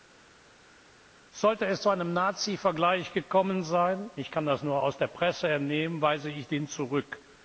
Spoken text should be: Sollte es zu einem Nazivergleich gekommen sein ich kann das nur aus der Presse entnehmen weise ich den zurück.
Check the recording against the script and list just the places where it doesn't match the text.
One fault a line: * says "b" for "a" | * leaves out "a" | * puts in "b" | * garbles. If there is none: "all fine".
all fine